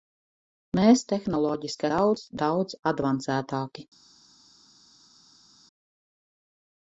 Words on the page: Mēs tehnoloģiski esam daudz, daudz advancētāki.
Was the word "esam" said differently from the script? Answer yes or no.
yes